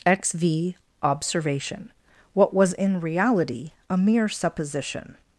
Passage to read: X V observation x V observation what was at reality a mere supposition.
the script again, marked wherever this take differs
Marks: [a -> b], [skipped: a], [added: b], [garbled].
X V observation [skipped: x V observation] what was [at -> in] reality a mere supposition.